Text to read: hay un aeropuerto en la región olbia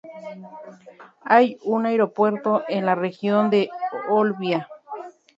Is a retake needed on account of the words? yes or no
yes